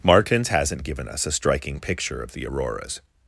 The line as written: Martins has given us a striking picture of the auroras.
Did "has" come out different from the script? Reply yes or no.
yes